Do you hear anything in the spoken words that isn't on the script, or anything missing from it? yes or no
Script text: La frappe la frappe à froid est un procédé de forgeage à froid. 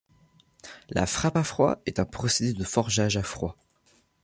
yes